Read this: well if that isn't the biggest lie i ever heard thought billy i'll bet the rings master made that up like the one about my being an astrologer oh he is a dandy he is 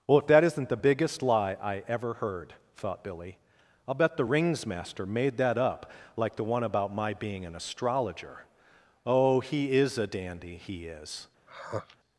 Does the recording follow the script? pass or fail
pass